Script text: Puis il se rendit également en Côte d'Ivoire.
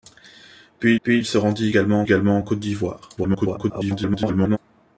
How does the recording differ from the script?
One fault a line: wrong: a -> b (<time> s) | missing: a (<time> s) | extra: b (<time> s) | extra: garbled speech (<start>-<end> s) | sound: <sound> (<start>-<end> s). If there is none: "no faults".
extra: puis (1.0 s)
extra: également (2.0 s)
extra: garbled speech (3.2-4.6 s)